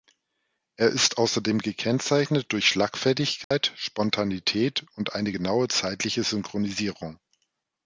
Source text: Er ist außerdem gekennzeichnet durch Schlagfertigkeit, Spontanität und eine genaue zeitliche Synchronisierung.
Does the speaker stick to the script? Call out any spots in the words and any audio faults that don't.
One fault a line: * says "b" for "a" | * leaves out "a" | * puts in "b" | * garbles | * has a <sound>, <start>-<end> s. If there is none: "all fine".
* has a dropout, 3.4-3.5 s